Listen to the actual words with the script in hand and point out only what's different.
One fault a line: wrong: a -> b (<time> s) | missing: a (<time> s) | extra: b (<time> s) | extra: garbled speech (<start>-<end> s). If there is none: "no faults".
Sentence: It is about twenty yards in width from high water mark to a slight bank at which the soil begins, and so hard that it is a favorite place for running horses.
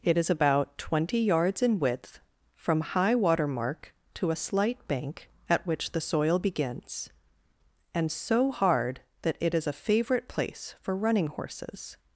no faults